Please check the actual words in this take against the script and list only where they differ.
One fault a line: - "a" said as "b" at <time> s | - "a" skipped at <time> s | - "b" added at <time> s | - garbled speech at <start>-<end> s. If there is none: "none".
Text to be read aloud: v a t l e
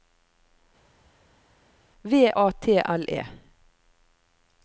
none